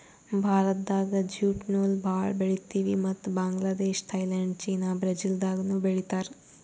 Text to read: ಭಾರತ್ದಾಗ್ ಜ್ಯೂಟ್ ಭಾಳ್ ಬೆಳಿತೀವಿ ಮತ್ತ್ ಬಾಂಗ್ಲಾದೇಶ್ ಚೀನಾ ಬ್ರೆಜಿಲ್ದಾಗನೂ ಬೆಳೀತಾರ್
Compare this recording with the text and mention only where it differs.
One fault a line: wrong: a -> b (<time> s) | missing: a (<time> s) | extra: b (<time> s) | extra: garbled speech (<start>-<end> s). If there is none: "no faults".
extra: ನೂಲ್ (1.7 s)
extra: ಥೈಲ್ಯಾಂಡ್ (4.1 s)